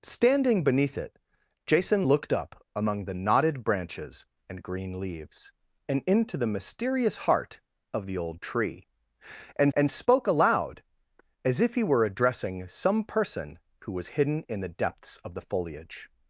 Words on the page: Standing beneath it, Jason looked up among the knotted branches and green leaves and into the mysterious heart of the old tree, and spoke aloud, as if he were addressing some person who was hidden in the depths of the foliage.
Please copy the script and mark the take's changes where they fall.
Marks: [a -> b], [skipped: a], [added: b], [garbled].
Standing beneath it, Jason looked up among the knotted branches and green leaves and into the mysterious heart of the old tree, and [added: and] spoke aloud, as if he were addressing some person who was hidden in the depths of the foliage.